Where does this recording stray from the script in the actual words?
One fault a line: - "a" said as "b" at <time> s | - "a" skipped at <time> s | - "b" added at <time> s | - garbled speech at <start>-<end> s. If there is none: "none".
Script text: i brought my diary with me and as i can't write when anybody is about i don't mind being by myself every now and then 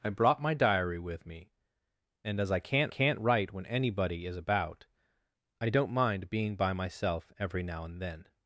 - "can't" added at 2.9 s